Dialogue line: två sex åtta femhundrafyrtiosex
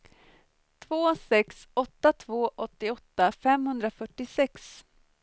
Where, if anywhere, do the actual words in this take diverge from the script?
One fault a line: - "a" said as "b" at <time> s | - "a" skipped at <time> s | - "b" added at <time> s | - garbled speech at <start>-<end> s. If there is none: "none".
- "två åttioåtta" added at 2.1 s